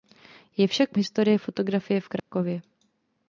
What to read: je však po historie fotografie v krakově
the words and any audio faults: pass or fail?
fail